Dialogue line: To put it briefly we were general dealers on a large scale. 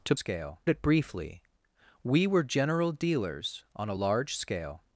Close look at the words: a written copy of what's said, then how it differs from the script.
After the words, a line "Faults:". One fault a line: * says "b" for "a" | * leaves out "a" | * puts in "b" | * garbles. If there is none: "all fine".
To scale it briefly we were general dealers on a large scale.
Faults:
* says "scale" for "put"